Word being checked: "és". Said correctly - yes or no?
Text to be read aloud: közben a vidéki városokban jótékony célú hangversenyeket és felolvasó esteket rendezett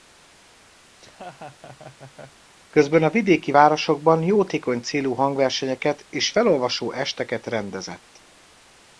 yes